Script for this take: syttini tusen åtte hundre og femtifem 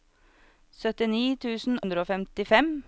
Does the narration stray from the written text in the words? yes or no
yes